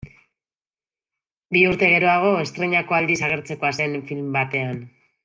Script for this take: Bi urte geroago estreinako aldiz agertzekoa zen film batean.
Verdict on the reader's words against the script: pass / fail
pass